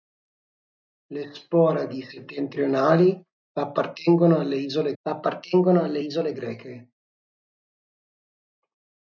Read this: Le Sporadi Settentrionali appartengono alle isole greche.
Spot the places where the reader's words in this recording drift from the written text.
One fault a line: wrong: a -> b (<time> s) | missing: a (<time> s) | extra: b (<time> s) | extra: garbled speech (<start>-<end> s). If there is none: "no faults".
extra: appartengono alle isole (5.0 s)